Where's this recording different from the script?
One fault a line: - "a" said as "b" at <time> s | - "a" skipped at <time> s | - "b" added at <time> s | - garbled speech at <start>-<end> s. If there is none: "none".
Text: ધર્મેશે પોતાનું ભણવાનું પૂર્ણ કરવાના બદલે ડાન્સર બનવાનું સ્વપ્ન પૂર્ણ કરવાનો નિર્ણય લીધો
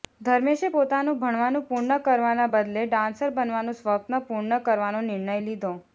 none